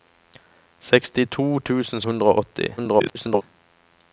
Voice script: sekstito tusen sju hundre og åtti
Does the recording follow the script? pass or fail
fail